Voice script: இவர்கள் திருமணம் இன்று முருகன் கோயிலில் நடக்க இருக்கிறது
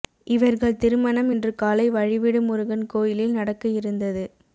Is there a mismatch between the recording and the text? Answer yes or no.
yes